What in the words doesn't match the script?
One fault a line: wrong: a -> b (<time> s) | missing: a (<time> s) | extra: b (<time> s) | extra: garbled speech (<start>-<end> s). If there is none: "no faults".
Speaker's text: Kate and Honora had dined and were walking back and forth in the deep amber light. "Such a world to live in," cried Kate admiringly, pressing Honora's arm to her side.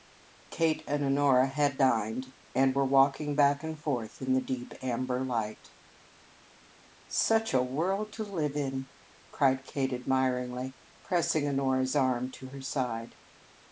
no faults